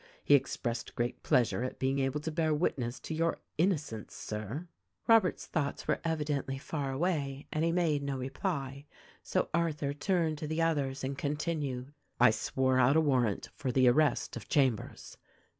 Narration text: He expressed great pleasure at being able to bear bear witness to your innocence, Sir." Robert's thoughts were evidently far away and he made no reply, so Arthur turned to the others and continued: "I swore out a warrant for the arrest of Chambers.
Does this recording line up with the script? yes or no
no